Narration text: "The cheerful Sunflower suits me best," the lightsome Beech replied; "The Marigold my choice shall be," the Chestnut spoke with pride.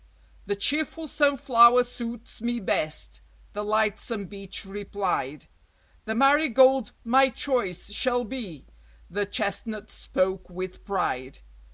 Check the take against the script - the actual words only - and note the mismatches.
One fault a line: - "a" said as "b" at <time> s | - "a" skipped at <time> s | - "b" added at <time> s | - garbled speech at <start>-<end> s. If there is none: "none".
none